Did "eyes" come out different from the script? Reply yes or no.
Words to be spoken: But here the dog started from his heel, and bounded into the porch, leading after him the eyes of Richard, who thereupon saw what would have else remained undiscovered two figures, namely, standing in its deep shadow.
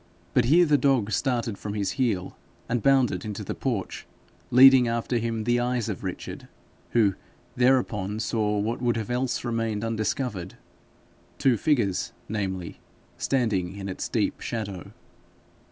no